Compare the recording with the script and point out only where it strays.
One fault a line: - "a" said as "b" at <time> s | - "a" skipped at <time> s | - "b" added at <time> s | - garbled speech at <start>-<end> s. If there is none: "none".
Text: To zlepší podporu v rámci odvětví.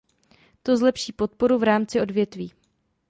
none